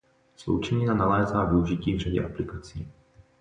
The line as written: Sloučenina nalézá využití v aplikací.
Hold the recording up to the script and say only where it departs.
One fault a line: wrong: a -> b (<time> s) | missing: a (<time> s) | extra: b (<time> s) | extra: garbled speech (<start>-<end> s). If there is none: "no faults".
extra: řadě (2.0 s)